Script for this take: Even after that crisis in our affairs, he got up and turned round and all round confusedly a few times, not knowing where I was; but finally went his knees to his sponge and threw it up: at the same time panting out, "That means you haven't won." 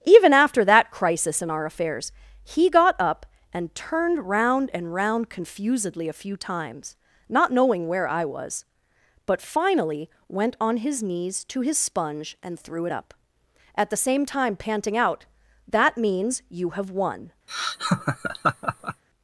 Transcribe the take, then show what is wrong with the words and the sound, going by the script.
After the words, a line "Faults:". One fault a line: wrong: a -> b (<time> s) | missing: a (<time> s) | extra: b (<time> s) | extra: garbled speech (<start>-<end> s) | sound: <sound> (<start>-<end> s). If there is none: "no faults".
Even after that crisis in our affairs, he got up and turned round and round confusedly a few times, not knowing where I was; but finally went on his knees to his sponge and threw it up: at the same time panting out, "That means you have won."
Faults:
missing: all (4.9 s)
extra: on (10.6 s)
wrong: haven't -> have (16.7 s)
sound: laugh (17.5-19.0 s)